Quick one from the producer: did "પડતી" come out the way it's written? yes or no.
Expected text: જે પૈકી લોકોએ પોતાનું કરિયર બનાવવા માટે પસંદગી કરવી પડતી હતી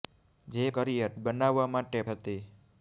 no